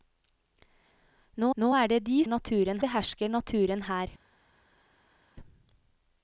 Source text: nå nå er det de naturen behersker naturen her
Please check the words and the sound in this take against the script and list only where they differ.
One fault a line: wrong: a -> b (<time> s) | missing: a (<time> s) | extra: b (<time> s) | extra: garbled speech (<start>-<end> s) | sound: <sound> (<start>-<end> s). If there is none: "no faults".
no faults